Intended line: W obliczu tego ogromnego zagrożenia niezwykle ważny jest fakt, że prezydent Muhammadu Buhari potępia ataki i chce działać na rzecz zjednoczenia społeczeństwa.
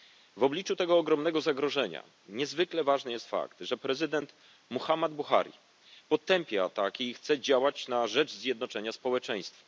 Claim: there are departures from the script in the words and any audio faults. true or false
false